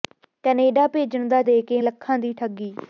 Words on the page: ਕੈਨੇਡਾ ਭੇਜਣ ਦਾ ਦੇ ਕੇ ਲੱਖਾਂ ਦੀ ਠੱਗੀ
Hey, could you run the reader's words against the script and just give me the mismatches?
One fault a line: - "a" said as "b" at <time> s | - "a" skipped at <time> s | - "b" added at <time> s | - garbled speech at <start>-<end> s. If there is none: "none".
none